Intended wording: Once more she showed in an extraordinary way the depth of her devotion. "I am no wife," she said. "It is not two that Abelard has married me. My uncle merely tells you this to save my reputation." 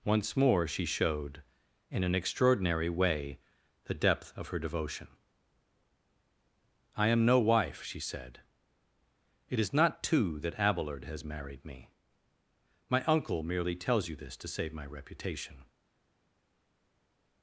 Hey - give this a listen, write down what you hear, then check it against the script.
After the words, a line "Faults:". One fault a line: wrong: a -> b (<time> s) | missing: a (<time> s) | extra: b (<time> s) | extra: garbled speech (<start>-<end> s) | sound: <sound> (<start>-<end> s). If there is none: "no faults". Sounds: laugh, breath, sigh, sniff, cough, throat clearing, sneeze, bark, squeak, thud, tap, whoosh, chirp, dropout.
Once more she showed in an extraordinary way the depth of her devotion. "I am no wife," she said. "It is not two that Abelard has married me. My uncle merely tells you this to save my reputation."
Faults:
no faults